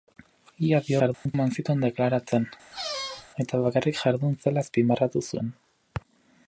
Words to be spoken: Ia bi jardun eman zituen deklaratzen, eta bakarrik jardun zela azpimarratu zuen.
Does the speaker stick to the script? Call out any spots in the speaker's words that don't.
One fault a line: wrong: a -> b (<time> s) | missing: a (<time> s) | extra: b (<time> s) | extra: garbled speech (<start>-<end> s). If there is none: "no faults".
no faults